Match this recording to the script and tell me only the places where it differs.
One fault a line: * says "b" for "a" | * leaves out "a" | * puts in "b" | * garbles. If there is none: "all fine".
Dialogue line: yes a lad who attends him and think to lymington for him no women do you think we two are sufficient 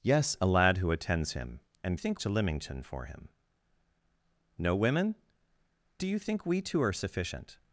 all fine